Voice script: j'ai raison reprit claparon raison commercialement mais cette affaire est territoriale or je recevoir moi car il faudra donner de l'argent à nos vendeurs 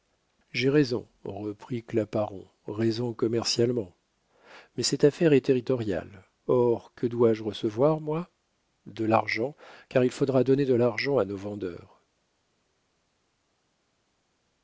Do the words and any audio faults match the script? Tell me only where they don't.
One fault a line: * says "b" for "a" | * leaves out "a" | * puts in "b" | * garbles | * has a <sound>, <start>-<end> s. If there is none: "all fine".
* puts in "que dois"
* puts in "de l'argent"